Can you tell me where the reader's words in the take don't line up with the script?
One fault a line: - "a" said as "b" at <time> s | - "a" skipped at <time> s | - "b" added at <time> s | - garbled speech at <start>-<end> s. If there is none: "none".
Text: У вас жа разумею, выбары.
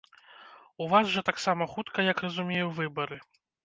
- "таксама хутка як" added at 1.3 s